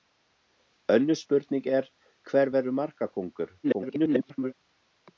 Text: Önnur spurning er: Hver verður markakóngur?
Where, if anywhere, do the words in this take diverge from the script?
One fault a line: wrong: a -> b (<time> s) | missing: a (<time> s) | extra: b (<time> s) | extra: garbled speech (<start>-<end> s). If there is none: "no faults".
extra: garbled speech (3.6-4.5 s)